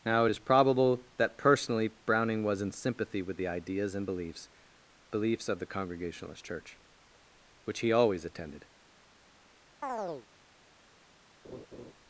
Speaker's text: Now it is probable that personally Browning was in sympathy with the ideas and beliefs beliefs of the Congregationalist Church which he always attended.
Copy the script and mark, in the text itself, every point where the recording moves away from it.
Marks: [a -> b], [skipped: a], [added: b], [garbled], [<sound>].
Now it is probable that personally Browning was in sympathy with the ideas and beliefs beliefs of the Congregationalist Church which he always attended. [chirp] [laugh]